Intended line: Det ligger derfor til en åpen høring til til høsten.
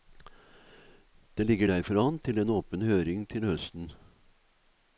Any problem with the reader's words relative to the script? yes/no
yes